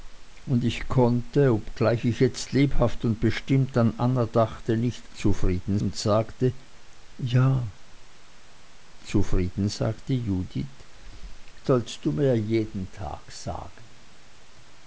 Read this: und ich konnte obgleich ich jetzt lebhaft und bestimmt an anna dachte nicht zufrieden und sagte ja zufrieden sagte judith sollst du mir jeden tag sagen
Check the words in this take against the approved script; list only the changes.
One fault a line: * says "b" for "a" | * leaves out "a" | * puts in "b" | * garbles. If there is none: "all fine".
all fine